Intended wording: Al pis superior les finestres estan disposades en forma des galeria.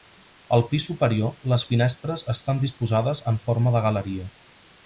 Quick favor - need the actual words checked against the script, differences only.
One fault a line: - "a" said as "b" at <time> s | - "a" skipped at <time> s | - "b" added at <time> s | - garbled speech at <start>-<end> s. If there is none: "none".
- "des" said as "de" at 3.8 s